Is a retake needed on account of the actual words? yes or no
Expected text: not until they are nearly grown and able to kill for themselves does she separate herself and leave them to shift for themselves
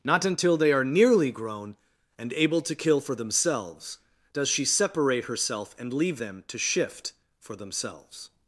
no